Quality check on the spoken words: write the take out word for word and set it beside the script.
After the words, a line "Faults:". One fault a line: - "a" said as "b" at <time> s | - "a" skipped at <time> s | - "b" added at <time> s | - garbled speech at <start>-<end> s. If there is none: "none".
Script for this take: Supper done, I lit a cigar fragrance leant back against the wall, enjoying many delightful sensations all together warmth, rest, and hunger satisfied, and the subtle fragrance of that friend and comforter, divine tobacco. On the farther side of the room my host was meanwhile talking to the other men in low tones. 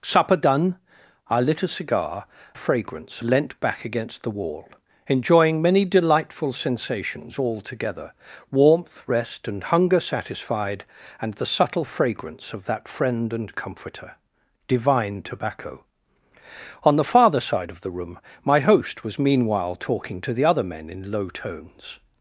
Supper done, I lit a cigar fragrance leant back against the wall, enjoying many delightful sensations all together warmth, rest, and hunger satisfied, and the subtle fragrance of that friend and comforter, divine tobacco. On the farther side of the room my host was meanwhile talking to the other men in low tones.
Faults:
none